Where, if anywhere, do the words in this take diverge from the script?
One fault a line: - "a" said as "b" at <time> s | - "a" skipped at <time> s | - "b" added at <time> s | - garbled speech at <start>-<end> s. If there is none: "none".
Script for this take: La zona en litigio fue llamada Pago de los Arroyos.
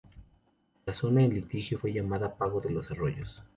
none